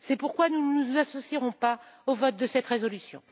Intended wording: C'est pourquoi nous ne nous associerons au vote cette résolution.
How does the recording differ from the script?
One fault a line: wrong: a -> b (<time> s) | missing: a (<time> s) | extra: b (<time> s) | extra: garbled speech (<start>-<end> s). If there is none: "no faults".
extra: pas (1.5 s)
extra: de (2.4 s)